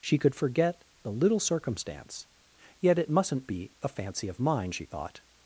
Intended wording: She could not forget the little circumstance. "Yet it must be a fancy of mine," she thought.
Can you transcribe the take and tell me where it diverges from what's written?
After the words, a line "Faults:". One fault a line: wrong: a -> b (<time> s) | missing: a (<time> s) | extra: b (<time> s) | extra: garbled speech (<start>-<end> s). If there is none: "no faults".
She could forget the little circumstance. "Yet it mustn't be a fancy of mine," she thought.
Faults:
missing: not (0.3 s)
wrong: must -> mustn't (3.1 s)